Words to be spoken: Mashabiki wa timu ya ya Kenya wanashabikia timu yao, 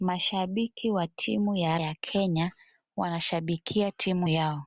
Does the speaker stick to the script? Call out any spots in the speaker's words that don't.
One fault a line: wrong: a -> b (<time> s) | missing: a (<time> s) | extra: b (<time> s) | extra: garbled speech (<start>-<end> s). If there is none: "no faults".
no faults